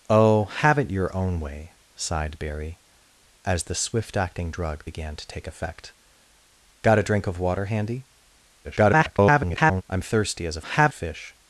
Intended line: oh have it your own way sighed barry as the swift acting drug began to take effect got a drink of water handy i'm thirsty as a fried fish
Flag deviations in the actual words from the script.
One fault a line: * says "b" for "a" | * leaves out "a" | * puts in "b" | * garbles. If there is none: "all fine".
* garbles
* says "have" for "fried"